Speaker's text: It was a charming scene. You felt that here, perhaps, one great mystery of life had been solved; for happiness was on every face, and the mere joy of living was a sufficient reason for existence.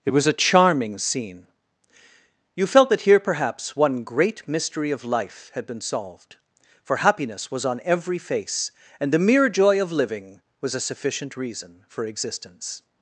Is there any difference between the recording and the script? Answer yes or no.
no